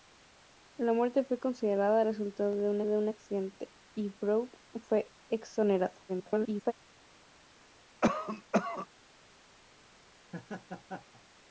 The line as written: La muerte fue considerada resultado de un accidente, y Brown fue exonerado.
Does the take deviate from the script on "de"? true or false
false